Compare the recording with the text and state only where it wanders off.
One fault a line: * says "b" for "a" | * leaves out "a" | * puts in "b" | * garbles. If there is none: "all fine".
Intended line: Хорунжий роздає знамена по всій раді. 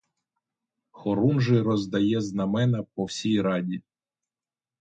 all fine